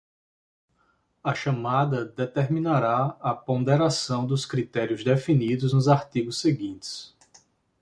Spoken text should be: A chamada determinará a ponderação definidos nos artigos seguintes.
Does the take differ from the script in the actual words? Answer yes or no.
yes